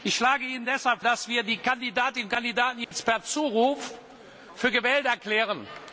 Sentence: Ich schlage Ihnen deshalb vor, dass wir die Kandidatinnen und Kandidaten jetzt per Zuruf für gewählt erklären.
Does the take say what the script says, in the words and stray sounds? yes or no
no